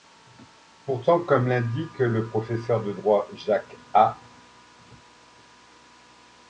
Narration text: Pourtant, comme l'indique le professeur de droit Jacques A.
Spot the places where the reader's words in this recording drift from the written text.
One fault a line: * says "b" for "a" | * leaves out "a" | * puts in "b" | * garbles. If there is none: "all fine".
all fine